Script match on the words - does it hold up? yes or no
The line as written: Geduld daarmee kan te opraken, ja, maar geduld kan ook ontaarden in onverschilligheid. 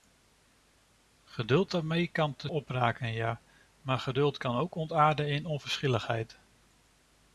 yes